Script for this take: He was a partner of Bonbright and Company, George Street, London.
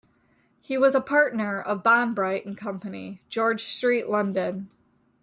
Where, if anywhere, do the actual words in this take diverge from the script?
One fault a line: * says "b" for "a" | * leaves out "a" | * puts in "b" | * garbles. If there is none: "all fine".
all fine